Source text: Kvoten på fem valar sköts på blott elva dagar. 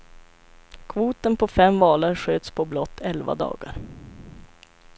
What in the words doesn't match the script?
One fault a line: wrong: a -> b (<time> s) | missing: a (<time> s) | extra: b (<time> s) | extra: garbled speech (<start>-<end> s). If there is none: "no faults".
no faults